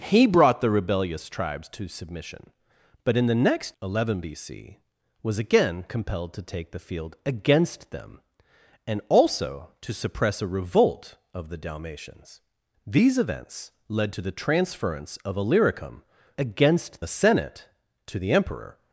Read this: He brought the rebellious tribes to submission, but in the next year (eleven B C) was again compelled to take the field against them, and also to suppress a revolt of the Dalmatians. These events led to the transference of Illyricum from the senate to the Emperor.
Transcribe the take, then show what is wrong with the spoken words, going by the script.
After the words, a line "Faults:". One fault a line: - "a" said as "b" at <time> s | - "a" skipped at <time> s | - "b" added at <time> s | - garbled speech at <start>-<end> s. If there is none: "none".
He brought the rebellious tribes to submission, but in the next (eleven B C) was again compelled to take the field against them, and also to suppress a revolt of the Dalmatians. These events led to the transference of Illyricum against the senate to the Emperor.
Faults:
- "year" skipped at 3.8 s
- "from" said as "against" at 16.4 s